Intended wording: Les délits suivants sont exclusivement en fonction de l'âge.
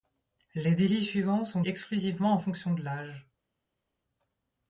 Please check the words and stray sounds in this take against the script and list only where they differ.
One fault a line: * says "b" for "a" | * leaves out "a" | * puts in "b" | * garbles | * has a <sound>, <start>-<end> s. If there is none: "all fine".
all fine